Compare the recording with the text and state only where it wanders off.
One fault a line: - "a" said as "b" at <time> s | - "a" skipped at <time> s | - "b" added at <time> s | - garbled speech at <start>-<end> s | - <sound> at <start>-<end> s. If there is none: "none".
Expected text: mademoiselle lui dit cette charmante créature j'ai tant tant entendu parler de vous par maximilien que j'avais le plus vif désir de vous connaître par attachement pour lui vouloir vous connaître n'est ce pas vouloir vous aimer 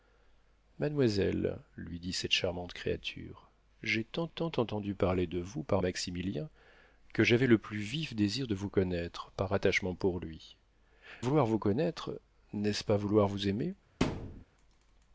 - thud at 14.0-14.4 s